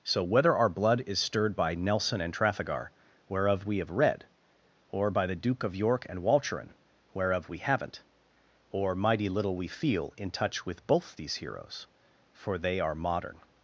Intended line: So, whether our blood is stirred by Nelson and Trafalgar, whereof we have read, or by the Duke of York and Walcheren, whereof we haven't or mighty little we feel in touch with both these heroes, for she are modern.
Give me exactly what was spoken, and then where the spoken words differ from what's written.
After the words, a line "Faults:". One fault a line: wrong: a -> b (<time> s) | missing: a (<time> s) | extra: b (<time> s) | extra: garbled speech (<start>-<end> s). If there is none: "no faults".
So, whether our blood is stirred by Nelson and Trafalgar, whereof we have read, or by the Duke of York and Walcheren, whereof we haven't or mighty little we feel in touch with both these heroes, for they are modern.
Faults:
wrong: she -> they (12.6 s)